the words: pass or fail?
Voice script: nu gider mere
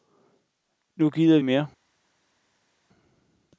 pass